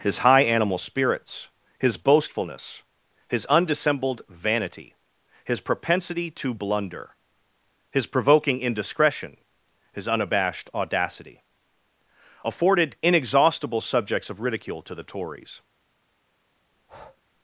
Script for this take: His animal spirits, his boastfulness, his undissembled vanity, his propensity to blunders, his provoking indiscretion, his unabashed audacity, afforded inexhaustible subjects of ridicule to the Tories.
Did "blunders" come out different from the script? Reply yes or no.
yes